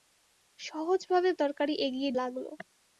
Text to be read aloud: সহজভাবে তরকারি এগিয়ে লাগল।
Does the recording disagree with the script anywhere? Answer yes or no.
no